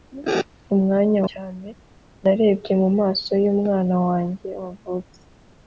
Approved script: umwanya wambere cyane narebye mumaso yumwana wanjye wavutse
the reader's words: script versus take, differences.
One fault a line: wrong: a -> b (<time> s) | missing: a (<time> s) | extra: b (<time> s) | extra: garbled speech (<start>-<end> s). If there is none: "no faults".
missing: wambere (1.2 s)